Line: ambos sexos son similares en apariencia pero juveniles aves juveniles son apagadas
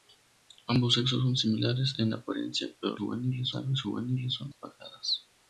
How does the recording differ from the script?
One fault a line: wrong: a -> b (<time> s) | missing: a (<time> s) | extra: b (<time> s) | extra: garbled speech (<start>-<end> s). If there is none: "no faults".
no faults